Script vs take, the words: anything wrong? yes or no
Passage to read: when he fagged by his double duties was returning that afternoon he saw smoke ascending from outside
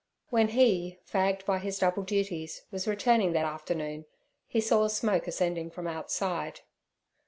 no